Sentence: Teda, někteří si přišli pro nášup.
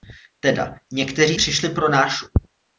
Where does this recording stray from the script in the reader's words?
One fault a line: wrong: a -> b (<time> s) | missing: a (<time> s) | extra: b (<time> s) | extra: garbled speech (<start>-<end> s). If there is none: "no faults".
missing: si (1.4 s)